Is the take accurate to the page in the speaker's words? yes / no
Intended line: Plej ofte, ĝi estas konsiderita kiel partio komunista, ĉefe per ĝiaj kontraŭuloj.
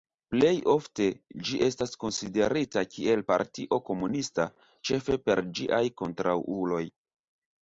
yes